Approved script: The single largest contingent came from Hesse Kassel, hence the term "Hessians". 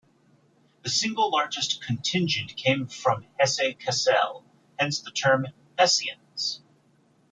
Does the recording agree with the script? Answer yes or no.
yes